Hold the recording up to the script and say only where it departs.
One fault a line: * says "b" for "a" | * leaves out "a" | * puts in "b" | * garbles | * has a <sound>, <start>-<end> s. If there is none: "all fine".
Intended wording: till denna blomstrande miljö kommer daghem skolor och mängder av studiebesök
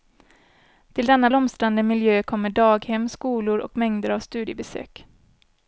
all fine